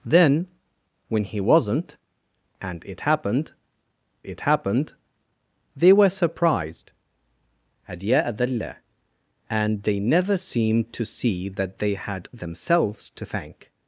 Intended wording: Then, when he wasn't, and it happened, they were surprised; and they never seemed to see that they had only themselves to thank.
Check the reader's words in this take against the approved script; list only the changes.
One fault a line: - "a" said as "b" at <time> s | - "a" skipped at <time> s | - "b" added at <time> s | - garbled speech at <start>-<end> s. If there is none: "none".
- "it happened" added at 4.2 s
- "only" skipped at 12.3 s